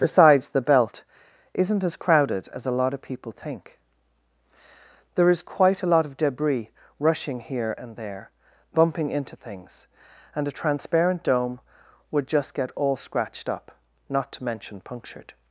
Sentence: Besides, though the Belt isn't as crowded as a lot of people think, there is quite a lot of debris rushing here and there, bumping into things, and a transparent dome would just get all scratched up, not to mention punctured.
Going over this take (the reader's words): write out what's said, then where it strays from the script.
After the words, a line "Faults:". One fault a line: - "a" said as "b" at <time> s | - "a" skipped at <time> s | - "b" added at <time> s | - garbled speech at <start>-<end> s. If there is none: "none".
Besides, the Belt isn't as crowded as a lot of people think, there is quite a lot of debris rushing here and there, bumping into things, and a transparent dome would just get all scratched up, not to mention punctured.
Faults:
- "though" skipped at 0.5 s